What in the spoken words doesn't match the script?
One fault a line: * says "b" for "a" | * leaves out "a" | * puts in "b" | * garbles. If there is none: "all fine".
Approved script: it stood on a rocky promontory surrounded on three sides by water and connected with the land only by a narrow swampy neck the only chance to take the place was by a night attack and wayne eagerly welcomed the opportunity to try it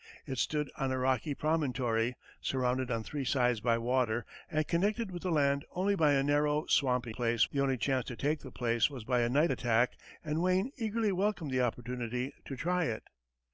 * says "place" for "neck"